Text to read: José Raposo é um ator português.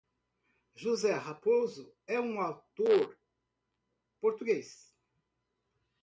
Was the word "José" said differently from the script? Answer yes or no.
no